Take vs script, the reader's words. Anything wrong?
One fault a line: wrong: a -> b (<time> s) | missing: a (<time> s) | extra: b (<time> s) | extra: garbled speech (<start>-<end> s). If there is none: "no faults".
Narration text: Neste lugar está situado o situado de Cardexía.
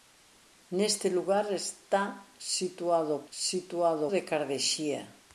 no faults